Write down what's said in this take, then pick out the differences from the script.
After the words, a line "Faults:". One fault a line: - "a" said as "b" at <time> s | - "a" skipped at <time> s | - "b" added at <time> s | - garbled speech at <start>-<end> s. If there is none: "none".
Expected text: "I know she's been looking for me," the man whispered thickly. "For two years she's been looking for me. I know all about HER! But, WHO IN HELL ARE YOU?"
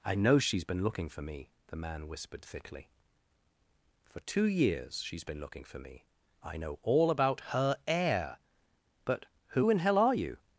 "I know she's been looking for me," the man whispered thickly. "For two years she's been looking for me. I know all about HER! heir But, WHO IN HELL ARE YOU?"
Faults:
- "heir" added at 7.9 s